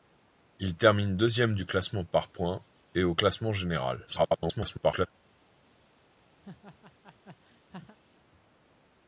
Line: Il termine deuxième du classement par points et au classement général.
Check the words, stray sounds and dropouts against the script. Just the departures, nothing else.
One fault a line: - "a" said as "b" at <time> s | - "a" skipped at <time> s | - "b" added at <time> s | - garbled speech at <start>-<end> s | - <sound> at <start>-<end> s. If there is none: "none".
- garbled speech at 4.1-5.1 s
- laugh at 6.4-8.0 s